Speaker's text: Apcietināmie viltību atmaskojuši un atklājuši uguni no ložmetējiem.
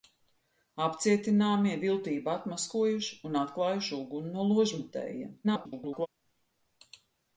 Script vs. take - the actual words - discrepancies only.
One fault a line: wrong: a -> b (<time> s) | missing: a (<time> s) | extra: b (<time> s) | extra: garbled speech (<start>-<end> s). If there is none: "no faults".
extra: garbled speech (5.4-6.1 s)